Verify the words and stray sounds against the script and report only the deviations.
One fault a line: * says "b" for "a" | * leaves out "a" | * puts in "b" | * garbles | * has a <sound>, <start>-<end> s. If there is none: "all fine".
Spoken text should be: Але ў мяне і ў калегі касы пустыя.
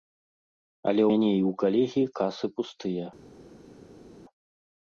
* leaves out "ў"